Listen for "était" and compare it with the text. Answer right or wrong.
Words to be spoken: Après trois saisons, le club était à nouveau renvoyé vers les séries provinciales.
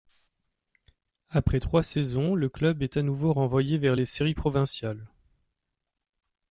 wrong